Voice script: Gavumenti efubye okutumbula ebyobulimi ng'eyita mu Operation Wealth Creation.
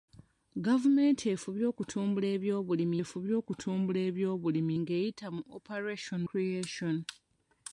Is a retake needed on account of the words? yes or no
yes